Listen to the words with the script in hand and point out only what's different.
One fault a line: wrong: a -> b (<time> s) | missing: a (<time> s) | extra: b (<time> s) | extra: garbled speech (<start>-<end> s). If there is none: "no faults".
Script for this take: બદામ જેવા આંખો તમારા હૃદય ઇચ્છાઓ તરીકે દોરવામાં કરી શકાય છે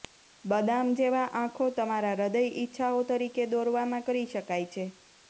no faults